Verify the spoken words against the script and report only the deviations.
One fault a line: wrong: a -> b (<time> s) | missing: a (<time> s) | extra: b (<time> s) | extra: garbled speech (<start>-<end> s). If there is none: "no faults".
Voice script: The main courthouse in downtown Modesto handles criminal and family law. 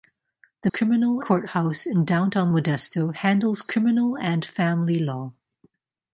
wrong: main -> criminal (0.7 s)